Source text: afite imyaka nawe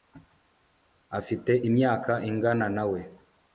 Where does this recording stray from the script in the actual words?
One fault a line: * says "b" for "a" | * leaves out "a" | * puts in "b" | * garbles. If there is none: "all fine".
* puts in "ingana"